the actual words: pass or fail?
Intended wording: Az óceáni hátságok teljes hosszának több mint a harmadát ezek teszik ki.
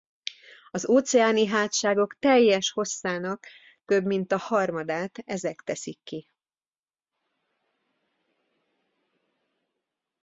pass